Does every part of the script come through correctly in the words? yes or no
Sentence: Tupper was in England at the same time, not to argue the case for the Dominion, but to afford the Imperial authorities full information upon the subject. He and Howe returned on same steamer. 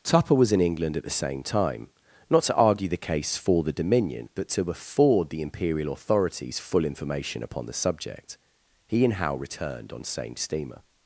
yes